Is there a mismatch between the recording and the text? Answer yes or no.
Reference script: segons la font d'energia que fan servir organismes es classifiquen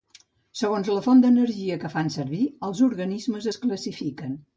yes